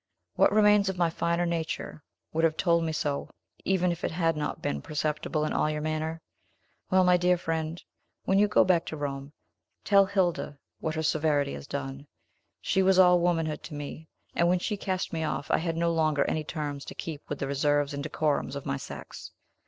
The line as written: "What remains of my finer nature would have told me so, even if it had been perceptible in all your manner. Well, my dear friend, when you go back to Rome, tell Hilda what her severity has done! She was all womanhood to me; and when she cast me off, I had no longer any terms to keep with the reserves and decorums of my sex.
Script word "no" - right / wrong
right